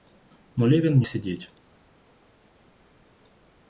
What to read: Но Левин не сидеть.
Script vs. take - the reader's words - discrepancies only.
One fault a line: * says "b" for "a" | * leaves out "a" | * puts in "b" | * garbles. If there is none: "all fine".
all fine